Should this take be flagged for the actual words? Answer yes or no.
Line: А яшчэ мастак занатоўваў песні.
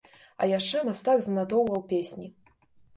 no